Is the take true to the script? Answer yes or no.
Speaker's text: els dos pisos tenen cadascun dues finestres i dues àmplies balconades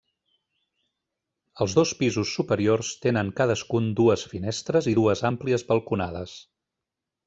no